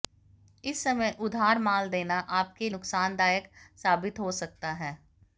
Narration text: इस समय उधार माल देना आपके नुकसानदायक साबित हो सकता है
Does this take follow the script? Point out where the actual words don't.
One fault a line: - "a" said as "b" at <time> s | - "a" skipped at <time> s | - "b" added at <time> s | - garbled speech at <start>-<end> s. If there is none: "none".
none